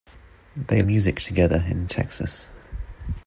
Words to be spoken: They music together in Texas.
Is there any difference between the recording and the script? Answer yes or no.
no